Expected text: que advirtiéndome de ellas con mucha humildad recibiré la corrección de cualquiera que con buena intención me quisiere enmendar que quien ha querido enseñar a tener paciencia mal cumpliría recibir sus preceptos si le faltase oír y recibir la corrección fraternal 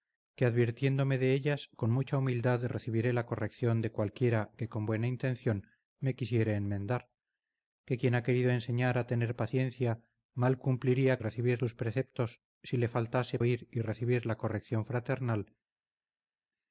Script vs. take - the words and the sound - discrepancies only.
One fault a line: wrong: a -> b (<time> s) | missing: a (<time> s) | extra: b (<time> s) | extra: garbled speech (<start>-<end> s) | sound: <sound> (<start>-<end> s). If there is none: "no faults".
no faults